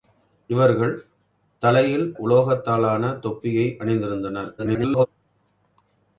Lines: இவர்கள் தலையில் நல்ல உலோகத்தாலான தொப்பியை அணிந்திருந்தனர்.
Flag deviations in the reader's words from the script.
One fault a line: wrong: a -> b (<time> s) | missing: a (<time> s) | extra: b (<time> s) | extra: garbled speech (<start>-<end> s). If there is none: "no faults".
missing: நல்ல (2.1 s)
extra: garbled speech (4.6-5.1 s)